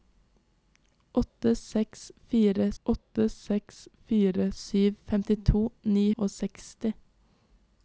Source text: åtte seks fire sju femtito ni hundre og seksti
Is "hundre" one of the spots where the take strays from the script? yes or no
yes